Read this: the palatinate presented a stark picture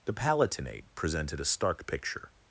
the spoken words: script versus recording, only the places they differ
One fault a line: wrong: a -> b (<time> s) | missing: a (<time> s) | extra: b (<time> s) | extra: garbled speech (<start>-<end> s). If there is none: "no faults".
no faults